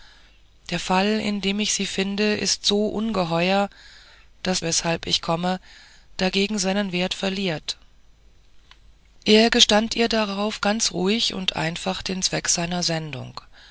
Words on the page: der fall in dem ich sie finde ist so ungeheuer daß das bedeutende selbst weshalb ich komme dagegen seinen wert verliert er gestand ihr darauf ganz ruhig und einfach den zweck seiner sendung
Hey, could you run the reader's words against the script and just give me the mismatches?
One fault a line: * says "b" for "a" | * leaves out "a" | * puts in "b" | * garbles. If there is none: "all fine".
* leaves out "das bedeutende selbst"